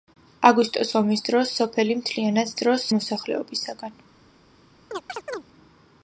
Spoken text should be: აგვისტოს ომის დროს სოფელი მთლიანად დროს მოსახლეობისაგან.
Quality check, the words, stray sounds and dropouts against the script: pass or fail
fail